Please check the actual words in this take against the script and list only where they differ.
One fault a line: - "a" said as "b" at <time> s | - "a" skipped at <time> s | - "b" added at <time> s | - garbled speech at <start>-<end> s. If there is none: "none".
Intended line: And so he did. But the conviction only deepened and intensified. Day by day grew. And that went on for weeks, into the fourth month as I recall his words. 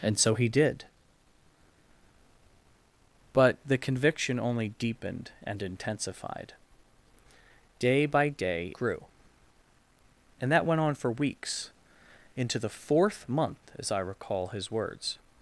none